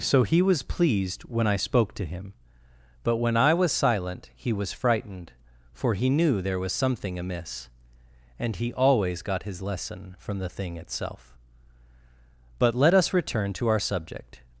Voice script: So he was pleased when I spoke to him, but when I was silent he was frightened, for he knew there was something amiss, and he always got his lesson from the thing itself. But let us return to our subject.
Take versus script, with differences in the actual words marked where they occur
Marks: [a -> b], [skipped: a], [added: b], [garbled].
So he was pleased when I spoke to him, but when I was silent he was frightened, for he knew there was something amiss, and he always got his lesson from the thing itself. But let us return to our subject.